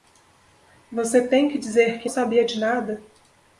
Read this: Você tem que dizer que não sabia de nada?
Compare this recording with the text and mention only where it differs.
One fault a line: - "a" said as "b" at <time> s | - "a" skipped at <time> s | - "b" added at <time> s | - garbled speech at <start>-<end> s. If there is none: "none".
- "não" skipped at 2.1 s